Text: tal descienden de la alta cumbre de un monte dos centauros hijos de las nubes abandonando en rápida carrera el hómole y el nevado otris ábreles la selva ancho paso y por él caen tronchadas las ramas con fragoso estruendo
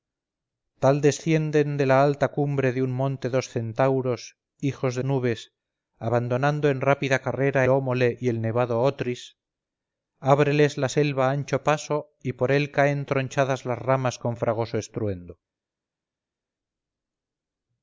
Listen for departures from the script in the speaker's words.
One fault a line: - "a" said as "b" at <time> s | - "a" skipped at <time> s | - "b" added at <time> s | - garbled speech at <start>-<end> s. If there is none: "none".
- "las" skipped at 5.0 s
- "el" skipped at 7.7 s